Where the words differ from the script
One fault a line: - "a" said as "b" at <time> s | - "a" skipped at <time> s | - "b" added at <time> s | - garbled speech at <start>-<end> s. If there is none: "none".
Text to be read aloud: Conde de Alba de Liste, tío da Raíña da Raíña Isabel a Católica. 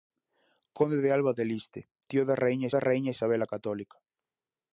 none